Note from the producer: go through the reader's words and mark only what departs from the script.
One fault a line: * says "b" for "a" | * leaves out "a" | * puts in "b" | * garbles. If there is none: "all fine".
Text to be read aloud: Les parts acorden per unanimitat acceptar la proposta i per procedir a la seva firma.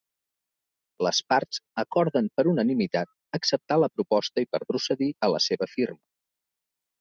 all fine